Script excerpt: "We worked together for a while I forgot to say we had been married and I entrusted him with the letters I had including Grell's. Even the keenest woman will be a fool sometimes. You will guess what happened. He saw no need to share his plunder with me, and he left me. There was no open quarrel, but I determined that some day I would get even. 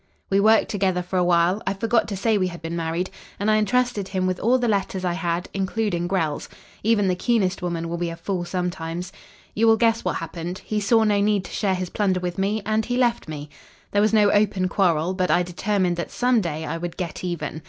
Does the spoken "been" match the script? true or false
true